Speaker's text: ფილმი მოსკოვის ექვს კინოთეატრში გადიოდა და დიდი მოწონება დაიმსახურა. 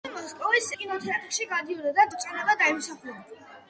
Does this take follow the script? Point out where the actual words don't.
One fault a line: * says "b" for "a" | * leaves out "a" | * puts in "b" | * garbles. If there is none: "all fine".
* leaves out "ექვს"
* leaves out "დიდი"